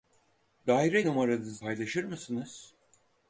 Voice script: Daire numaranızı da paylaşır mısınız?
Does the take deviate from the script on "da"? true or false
true